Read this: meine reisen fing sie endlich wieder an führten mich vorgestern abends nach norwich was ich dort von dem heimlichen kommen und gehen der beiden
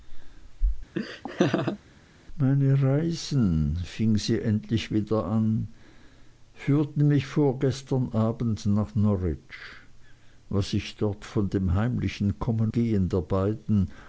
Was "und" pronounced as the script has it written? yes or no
no